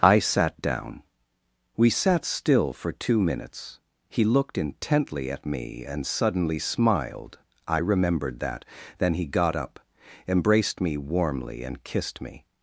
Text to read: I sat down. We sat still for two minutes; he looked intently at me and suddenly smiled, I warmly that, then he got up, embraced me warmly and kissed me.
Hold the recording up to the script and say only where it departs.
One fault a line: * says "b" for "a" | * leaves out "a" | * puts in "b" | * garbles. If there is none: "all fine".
* says "remembered" for "warmly"